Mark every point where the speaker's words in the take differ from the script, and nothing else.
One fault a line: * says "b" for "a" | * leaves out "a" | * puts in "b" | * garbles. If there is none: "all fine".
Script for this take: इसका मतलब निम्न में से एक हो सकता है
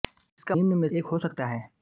* leaves out "मतलब"
* leaves out "से"